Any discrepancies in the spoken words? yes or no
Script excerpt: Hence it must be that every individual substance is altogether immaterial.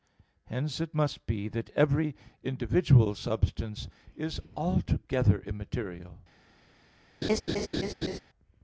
no